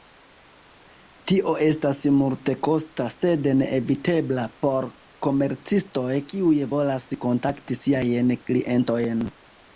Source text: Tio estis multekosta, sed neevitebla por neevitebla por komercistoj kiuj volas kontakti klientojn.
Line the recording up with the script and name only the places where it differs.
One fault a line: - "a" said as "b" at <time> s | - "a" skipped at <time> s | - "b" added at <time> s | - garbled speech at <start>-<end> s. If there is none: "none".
- "estis" said as "estas" at 1.6 s
- "neevitebla por" skipped at 4.9 s
- "siajn" added at 7.9 s